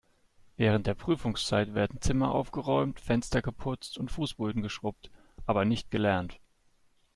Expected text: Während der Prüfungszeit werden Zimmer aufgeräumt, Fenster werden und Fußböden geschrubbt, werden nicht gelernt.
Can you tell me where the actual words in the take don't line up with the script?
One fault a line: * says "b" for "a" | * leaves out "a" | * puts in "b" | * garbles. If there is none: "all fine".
* says "geputzt" for "werden"
* says "aber" for "werden"